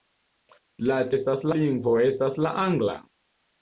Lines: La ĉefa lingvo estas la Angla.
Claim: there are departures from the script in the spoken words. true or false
true